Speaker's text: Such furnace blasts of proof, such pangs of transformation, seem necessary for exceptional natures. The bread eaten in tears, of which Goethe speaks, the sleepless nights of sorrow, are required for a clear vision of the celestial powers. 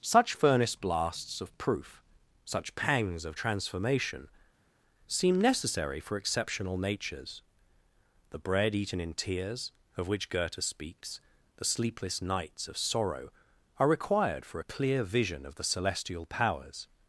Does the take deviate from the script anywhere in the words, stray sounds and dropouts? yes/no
no